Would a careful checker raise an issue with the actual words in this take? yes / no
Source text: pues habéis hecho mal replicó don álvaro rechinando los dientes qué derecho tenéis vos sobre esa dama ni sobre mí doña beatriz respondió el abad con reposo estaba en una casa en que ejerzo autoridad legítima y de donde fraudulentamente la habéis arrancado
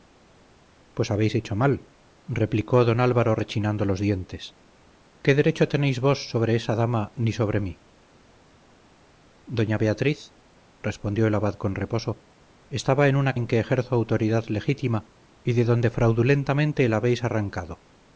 yes